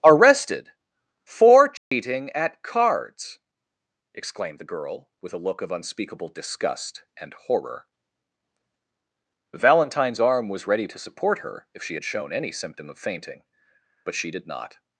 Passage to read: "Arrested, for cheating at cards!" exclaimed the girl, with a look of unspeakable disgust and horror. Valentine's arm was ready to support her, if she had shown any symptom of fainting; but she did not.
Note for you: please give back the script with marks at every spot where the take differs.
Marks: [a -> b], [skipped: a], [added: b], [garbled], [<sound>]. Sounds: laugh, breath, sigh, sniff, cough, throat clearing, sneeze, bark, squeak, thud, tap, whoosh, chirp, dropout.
"Arrested, for cheating [dropout] at cards!" exclaimed the girl, with a look of unspeakable disgust and horror. Valentine's arm was ready to support her, if she had shown any symptom of fainting; but she did not.